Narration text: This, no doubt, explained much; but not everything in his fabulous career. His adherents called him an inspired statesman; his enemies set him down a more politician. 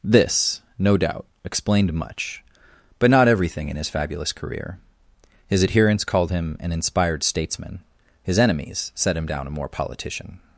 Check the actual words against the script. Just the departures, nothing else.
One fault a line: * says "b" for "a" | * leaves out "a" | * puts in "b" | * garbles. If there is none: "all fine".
all fine